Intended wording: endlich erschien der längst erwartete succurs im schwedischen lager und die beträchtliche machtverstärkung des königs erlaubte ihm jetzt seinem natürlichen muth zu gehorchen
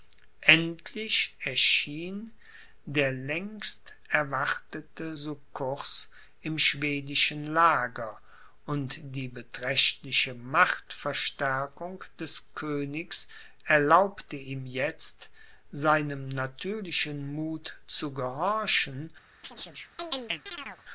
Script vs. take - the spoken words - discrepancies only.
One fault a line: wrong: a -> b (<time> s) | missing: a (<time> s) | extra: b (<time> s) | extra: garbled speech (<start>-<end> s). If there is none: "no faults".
no faults